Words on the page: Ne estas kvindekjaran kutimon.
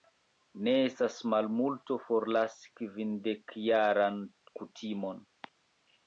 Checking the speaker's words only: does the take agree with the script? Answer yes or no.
no